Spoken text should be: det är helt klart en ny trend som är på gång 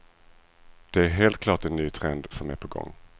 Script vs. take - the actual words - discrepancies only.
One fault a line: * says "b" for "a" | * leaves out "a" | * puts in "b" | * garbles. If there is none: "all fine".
all fine